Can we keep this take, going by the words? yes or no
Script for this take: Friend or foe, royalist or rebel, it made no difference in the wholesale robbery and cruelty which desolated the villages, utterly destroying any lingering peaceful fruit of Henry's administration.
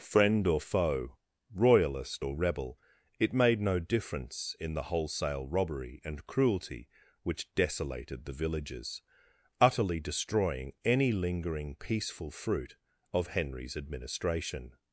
yes